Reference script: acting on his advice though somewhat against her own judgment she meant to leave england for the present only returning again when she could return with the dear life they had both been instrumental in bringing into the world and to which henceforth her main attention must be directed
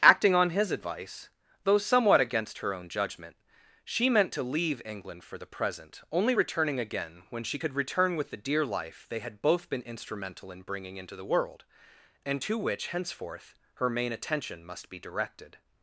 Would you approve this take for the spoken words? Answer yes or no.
yes